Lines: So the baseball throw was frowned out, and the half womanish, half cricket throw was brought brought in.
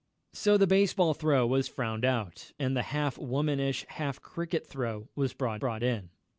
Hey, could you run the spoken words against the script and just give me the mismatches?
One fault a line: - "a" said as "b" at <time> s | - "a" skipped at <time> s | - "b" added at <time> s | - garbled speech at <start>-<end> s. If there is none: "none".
none